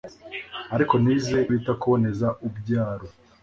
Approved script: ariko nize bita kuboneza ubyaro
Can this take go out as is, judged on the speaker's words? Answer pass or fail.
pass